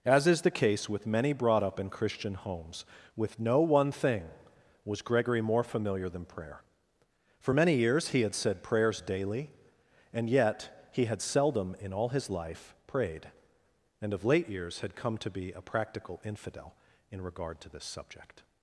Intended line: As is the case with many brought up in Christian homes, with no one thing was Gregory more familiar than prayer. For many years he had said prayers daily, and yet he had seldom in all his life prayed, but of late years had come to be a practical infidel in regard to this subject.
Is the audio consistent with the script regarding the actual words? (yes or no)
no